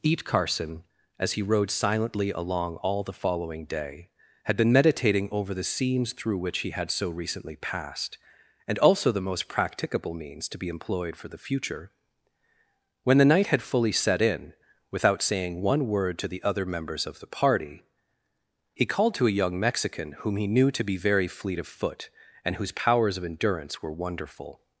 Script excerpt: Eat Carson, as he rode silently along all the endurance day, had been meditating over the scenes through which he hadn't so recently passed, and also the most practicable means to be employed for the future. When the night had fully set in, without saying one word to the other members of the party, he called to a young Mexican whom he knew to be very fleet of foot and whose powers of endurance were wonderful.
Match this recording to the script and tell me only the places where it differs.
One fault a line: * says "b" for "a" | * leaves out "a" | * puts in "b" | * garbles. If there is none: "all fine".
* says "following" for "endurance"
* says "had" for "hadn't"